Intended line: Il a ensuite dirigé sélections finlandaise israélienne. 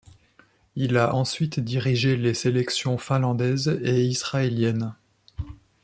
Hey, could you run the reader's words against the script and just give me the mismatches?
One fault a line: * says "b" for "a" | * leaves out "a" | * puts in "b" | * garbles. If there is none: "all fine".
* puts in "les"
* puts in "et"